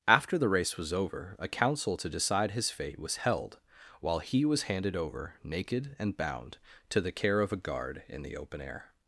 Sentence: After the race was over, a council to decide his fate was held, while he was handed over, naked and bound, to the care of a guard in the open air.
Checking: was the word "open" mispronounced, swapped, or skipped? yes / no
no